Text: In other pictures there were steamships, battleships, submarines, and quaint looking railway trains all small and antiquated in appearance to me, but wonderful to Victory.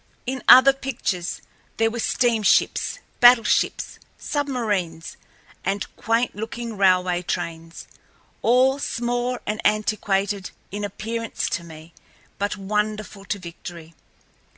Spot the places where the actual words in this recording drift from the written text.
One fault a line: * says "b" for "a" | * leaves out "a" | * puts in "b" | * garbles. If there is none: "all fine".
all fine